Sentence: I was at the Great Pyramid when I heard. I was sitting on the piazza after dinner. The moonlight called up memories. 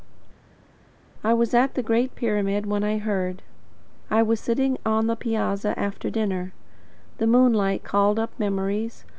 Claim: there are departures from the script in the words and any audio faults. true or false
false